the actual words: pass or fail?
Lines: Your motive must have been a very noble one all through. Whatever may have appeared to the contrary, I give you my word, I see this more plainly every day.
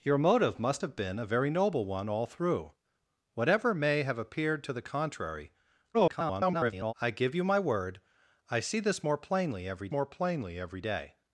fail